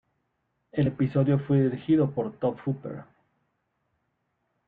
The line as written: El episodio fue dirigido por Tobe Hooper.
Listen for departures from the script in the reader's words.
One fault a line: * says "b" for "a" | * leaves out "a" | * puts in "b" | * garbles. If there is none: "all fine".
all fine